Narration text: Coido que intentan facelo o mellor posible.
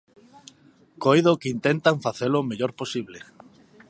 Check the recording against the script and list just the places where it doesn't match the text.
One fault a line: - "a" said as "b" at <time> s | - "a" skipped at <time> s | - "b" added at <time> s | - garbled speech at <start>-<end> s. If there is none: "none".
none